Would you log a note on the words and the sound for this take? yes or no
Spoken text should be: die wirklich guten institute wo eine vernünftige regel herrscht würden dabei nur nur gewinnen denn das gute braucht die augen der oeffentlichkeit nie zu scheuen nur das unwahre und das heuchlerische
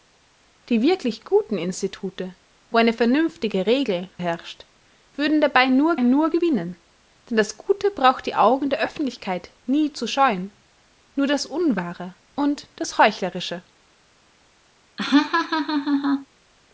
yes